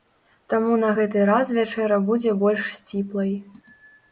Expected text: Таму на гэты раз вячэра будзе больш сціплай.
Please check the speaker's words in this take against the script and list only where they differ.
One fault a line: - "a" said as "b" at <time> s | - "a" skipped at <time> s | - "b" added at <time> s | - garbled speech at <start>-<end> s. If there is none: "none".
none